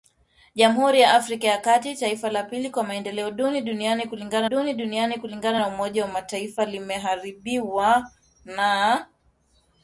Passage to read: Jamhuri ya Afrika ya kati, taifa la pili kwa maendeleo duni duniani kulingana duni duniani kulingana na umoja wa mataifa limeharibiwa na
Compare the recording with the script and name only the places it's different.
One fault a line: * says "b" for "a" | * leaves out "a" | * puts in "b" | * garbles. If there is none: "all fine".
all fine